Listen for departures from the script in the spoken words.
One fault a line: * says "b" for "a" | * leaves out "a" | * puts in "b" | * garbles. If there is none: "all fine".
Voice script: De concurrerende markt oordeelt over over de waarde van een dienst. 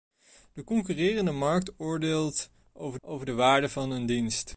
all fine